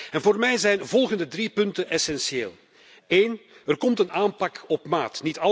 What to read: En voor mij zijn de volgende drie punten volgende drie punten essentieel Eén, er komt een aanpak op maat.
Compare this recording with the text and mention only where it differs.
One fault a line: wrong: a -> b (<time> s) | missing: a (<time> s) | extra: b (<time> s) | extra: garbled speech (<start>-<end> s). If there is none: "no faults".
missing: volgende drie punten (1.9 s)